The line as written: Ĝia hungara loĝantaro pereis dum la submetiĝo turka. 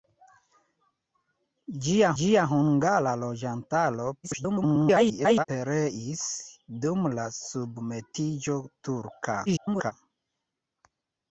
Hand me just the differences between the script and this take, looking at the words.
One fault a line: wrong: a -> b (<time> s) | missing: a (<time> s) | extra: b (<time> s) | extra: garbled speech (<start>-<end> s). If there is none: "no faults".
extra: ĝia (2.2 s)
extra: garbled speech (4.2-5.5 s)
extra: garbled speech (9.5-9.9 s)